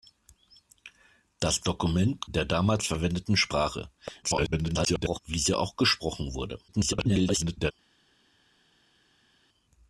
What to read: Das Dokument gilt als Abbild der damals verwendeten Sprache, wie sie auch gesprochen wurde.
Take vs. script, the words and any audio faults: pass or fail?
fail